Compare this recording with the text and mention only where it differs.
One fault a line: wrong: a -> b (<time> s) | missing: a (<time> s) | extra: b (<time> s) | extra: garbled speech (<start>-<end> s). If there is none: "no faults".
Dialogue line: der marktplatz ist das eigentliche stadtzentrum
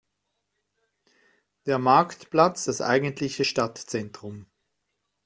missing: ist (2.6 s)